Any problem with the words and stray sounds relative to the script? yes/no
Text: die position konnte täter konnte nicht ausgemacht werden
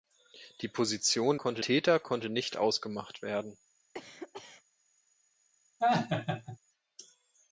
yes